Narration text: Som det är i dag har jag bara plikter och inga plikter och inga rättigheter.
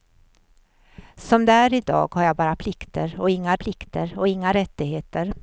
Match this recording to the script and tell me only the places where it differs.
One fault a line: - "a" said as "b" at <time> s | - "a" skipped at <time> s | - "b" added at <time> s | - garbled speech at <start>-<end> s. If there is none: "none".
none